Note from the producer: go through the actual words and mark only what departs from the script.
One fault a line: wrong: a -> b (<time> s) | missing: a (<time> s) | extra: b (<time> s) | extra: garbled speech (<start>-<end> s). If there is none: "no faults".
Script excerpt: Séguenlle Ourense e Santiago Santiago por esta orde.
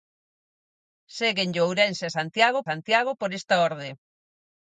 no faults